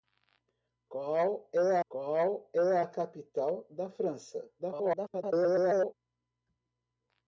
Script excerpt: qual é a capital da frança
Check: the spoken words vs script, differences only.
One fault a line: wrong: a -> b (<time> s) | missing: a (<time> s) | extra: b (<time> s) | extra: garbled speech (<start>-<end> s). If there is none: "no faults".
extra: qual é (1.9 s)
extra: garbled speech (4.6-5.9 s)